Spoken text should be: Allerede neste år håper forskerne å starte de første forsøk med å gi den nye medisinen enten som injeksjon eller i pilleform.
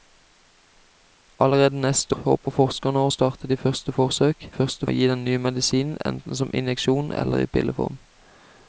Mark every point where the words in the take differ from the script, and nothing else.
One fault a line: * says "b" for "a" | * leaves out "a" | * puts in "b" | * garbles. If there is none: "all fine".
* leaves out "år"
* says "første" for "med"